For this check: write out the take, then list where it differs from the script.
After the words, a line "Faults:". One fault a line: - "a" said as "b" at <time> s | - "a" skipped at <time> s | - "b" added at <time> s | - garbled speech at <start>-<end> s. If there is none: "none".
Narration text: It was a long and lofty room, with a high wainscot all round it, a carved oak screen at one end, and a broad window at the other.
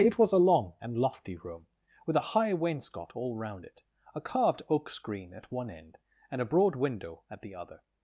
It was a long and lofty room, with a high wainscot all round it, a carved oak screen at one end, and a broad window at the other.
Faults:
none